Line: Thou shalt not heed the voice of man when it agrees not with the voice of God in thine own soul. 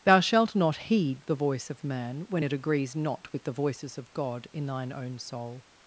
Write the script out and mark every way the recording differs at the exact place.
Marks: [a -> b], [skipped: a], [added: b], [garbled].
Thou shalt not heed the voice of man when it agrees not with the [voice -> voices] of God in thine own soul.